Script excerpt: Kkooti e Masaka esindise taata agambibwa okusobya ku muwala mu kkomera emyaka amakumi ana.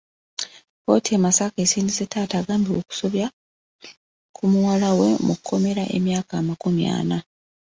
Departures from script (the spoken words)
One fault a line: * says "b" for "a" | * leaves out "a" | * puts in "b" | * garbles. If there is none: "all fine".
* puts in "we"